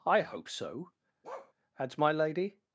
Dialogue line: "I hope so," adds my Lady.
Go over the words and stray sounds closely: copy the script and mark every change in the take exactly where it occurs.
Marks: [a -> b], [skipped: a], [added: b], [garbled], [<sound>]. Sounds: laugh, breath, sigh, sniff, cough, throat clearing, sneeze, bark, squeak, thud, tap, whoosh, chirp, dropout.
"I hope so," [bark] adds my Lady.